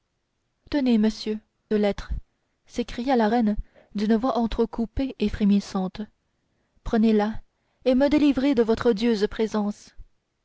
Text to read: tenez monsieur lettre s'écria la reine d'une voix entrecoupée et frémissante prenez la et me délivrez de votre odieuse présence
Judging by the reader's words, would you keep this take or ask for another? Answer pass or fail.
pass